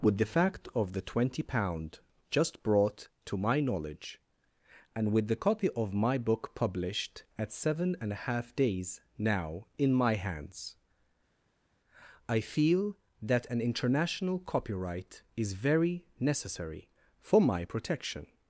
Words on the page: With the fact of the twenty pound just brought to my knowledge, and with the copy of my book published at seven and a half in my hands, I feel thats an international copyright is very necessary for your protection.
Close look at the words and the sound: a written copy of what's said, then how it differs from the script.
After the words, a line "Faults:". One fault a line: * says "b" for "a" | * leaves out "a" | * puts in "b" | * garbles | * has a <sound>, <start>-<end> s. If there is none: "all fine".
With the fact of the twenty pound just brought to my knowledge, and with the copy of my book published at seven and a half days now in my hands, I feel that an international copyright is very necessary for my protection.
Faults:
* puts in "days now"
* says "that" for "thats"
* says "my" for "your"